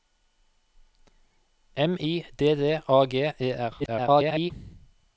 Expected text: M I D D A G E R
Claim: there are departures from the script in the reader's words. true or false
true